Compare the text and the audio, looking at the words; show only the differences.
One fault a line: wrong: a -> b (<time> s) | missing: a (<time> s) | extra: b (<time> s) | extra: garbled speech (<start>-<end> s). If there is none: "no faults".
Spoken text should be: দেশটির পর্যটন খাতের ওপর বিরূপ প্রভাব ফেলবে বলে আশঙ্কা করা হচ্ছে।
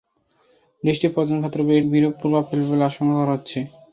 no faults